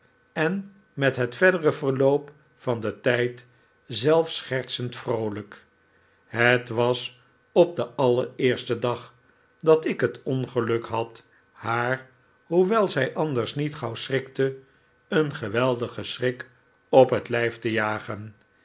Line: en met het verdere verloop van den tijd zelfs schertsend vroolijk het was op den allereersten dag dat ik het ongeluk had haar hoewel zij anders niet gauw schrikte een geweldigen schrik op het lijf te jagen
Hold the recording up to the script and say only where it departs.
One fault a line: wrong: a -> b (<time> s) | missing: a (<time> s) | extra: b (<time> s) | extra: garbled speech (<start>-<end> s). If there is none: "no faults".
no faults